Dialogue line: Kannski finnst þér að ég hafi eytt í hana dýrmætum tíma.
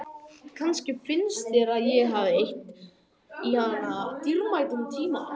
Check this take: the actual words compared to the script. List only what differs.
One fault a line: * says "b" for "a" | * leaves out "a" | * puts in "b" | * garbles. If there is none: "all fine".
all fine